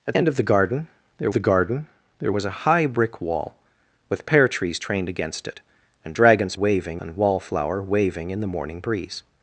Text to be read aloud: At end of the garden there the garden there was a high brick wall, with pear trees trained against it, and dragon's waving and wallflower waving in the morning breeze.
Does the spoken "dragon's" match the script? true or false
true